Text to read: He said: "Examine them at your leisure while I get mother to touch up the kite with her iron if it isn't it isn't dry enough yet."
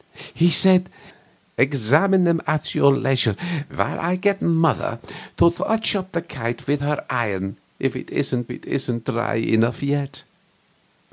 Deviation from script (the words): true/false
false